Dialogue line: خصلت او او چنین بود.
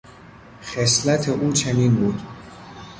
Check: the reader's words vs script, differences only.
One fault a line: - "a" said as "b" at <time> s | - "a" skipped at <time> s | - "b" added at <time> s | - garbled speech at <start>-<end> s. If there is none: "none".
- "او" skipped at 1.5 s